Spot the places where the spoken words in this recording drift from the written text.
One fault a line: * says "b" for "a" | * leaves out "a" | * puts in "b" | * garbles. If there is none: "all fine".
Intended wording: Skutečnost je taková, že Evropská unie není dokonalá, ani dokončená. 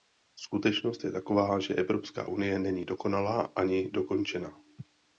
all fine